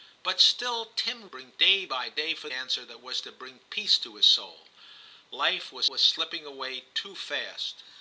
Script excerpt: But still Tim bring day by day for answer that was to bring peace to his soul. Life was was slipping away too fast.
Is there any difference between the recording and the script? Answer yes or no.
no